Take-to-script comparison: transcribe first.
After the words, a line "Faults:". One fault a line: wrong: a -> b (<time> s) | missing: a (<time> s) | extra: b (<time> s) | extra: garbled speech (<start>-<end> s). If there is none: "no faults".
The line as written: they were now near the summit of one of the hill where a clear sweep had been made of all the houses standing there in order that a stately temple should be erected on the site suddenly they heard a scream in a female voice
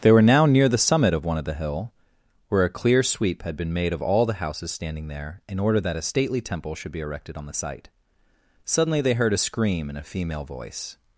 they were now near the summit of one of the hill where a clear sweep had been made of all the houses standing there in order that a stately temple should be erected on the site suddenly they heard a scream in a female voice
Faults:
no faults